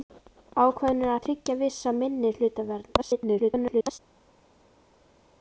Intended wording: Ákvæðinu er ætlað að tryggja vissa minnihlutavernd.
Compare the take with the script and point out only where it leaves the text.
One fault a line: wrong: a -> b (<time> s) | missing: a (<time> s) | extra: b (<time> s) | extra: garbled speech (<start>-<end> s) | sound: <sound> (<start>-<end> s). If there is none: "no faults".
missing: ætlað (1.1 s)
extra: garbled speech (3.0-4.0 s)